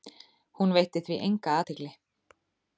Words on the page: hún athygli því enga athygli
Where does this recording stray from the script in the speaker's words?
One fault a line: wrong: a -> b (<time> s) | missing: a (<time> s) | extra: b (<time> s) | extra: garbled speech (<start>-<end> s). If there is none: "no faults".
wrong: athygli -> veitti (0.8 s)